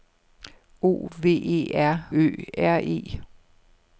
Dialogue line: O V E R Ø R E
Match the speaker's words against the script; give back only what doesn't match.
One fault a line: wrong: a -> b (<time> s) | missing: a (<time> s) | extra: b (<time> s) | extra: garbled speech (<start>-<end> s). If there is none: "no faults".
no faults